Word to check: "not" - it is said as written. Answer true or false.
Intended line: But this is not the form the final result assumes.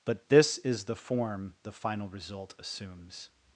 false